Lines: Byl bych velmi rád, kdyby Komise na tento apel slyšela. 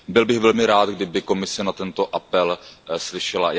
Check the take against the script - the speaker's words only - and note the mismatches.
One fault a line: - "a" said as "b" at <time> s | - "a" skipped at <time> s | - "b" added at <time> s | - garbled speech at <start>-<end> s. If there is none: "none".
none